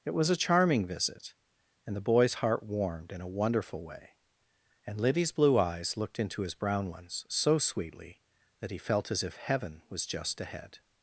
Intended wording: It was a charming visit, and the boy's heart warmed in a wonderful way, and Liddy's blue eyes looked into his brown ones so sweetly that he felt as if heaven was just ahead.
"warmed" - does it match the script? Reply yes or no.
yes